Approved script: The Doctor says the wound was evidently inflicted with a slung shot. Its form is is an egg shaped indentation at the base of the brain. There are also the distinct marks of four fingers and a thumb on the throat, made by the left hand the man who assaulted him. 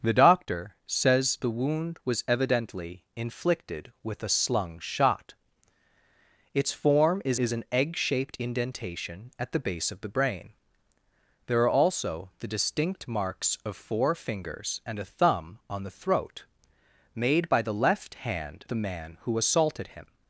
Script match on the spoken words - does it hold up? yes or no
yes